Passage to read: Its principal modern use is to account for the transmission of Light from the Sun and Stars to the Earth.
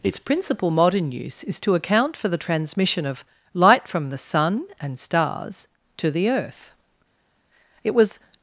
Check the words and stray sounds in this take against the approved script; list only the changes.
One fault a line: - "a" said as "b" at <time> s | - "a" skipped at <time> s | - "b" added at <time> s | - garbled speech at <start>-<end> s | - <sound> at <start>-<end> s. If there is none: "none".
- "It was" added at 7.8 s